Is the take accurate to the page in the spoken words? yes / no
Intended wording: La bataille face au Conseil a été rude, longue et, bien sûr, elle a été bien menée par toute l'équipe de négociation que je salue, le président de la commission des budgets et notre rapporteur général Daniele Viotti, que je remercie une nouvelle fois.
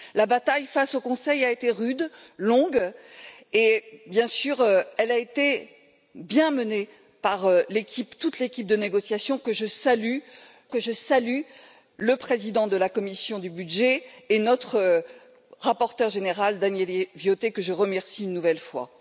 no